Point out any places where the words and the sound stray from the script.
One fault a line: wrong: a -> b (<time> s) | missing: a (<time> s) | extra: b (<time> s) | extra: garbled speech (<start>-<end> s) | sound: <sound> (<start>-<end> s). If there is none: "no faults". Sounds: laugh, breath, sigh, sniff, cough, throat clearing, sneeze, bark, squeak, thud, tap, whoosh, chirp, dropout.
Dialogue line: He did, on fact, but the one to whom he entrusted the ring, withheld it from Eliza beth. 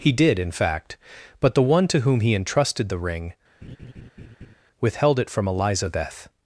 wrong: on -> in (0.4 s)
sound: laugh (3.6-4.6 s)